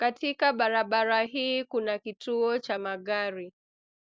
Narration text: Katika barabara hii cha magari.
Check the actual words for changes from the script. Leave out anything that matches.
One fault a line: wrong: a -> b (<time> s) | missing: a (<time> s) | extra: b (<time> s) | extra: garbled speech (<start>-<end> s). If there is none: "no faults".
extra: kuna kituo (1.6 s)